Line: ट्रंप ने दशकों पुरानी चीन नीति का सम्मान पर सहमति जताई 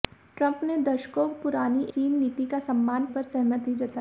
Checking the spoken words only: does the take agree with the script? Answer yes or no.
yes